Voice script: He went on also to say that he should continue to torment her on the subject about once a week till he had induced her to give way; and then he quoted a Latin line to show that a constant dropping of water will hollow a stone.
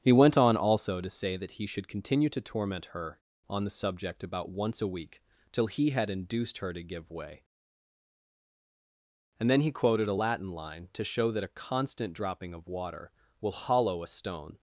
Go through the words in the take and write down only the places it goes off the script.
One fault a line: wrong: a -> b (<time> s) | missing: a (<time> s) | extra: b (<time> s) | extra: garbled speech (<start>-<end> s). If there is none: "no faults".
no faults